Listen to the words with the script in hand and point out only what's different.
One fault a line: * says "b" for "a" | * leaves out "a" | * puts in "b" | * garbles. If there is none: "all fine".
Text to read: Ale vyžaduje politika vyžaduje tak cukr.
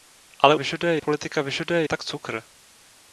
all fine